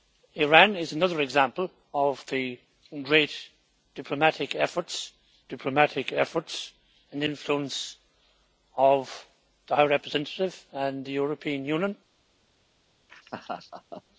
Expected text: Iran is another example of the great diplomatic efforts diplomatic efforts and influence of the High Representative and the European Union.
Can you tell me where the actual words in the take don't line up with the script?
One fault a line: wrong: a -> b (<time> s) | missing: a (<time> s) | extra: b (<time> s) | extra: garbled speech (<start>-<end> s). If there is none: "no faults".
no faults